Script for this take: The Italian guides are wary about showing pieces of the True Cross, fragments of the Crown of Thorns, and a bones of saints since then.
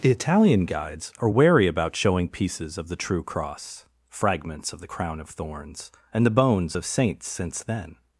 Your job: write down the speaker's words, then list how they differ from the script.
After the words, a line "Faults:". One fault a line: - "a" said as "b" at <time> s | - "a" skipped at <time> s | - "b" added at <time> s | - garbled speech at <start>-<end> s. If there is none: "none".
The Italian guides are wary about showing pieces of the True Cross, fragments of the Crown of Thorns, and the bones of saints since then.
Faults:
- "a" said as "the" at 6.2 s